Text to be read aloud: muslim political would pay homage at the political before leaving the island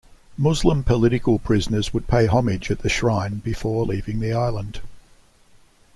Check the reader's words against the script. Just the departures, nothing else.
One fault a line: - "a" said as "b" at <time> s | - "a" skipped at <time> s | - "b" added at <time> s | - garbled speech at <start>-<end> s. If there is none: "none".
- "prisoners" added at 1.4 s
- "political" said as "shrine" at 2.9 s